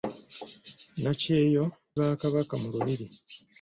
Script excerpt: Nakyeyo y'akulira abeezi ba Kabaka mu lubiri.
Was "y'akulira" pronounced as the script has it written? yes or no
no